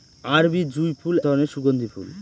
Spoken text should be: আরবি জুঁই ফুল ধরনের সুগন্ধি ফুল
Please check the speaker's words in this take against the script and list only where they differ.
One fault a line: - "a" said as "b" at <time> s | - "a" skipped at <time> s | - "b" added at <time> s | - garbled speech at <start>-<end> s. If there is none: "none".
none